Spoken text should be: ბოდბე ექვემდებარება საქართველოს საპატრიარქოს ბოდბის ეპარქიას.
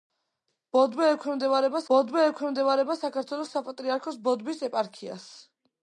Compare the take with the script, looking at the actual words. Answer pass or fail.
fail